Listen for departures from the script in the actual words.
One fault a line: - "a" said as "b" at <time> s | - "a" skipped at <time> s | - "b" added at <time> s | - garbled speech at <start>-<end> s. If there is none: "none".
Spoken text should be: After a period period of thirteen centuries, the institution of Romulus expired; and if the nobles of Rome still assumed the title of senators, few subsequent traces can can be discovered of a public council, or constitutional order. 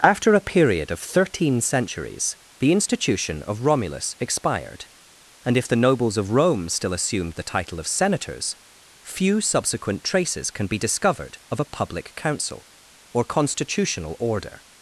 - "period" skipped at 0.9 s
- "can" skipped at 10.7 s